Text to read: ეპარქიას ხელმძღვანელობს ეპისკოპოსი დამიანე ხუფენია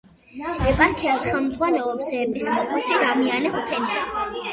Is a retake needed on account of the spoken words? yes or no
no